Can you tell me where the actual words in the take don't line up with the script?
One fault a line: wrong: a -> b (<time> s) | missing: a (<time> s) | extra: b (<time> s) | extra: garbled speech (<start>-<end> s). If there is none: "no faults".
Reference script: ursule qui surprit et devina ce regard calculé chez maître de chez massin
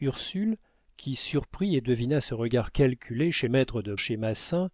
no faults